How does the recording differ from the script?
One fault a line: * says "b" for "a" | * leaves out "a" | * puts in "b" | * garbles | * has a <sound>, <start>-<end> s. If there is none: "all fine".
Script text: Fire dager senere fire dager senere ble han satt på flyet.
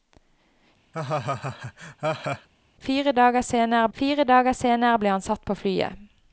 * has a laugh, 0.9-2.5 s